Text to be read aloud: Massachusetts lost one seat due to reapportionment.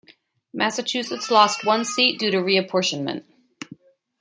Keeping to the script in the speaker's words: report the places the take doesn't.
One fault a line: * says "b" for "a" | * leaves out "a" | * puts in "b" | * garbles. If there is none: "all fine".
all fine